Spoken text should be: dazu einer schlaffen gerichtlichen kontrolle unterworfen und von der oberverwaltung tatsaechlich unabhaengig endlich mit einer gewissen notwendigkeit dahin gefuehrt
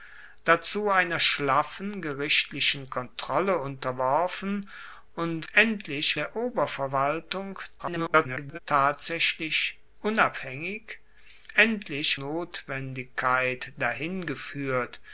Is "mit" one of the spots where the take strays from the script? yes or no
yes